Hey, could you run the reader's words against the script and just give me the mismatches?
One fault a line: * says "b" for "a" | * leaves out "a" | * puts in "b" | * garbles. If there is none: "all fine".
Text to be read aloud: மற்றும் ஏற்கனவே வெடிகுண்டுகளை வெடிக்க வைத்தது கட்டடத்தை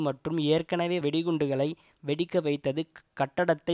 all fine